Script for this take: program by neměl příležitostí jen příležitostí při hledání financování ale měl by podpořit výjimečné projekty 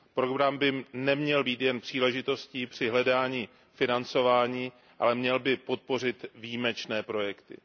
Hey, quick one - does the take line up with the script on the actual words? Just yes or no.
no